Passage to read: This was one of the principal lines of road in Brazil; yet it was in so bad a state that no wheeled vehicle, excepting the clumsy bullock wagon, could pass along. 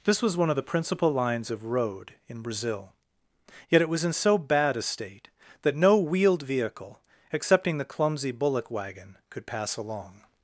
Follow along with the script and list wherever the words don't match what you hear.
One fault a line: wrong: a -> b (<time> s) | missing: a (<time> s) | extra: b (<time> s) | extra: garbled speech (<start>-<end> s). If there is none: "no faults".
no faults